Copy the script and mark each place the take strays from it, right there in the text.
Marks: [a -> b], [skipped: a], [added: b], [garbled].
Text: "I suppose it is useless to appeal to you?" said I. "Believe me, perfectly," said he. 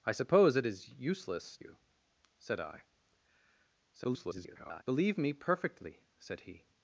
"I suppose it is useless [skipped: to appeal to] you?" said I. [garbled] "Believe me, perfectly," said he.